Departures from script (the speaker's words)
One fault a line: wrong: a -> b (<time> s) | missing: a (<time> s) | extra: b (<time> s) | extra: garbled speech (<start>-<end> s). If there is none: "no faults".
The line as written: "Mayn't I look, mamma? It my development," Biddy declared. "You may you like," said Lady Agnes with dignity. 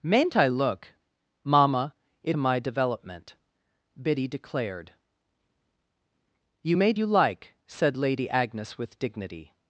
no faults